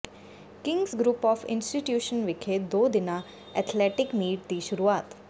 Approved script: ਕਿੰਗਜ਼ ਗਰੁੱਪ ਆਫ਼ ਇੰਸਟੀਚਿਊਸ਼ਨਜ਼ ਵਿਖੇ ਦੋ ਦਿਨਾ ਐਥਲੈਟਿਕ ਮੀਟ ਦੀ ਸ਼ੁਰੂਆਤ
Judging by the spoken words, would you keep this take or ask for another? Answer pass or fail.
pass